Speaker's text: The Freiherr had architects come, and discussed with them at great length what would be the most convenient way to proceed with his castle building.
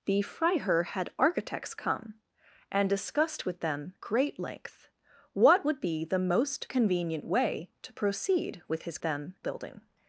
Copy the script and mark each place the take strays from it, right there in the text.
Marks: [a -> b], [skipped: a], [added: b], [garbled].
The Freiherr had architects come, and discussed with them [skipped: at] great length what would be the most convenient way to proceed with his [castle -> them] building.